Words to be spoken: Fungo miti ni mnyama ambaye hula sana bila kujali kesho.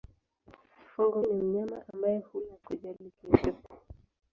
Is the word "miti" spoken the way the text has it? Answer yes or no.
no